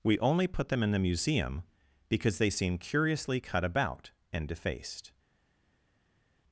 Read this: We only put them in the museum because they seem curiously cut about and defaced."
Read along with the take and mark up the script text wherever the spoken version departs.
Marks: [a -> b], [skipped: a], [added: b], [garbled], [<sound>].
We only put them in the museum because they seem curiously cut about and defaced."